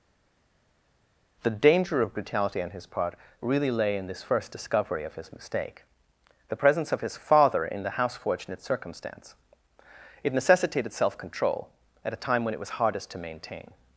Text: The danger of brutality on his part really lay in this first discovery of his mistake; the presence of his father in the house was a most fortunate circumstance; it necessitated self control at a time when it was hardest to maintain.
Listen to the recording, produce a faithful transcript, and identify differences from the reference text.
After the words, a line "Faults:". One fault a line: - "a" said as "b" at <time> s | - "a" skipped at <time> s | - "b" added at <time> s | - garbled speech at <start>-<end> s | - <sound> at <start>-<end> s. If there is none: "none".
The danger of brutality on his part really lay in this first discovery of his mistake; the presence of his father in the house fortunate circumstance; it necessitated self control at a time when it was hardest to maintain.
Faults:
- "was a most" skipped at 8.2 s